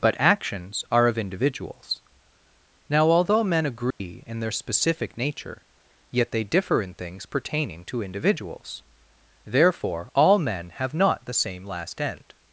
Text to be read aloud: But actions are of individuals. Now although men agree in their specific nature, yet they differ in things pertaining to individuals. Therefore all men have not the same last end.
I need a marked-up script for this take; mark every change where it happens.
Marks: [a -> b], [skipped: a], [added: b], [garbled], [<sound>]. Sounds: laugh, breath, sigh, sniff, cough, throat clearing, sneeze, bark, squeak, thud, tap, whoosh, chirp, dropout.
But actions are of individuals. Now although men agree [dropout] in their specific nature, yet they differ in things pertaining to individuals. Therefore all men have not the same last end.